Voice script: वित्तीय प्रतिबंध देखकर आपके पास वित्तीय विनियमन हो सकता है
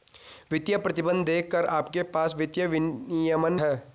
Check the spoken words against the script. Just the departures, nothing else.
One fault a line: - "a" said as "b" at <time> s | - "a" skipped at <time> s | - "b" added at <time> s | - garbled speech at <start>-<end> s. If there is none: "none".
- "हो सकता" skipped at 3.6 s